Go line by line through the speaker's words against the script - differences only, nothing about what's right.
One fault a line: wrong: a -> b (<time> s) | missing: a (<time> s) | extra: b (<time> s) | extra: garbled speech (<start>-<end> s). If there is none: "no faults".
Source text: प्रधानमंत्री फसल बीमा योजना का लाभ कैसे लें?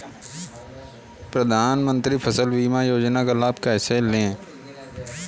no faults